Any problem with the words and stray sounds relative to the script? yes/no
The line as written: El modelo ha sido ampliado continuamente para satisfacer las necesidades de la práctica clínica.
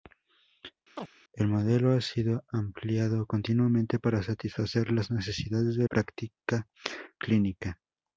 yes